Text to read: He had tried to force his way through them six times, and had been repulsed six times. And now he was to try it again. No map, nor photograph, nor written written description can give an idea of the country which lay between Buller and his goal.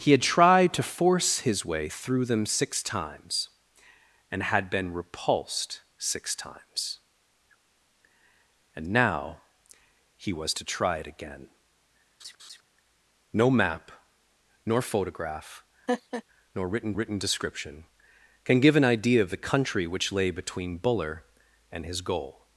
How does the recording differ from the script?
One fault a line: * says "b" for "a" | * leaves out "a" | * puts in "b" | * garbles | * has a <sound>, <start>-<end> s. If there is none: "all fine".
* has a laugh, 12.2-12.6 s
* has a laugh, 15.9-16.2 s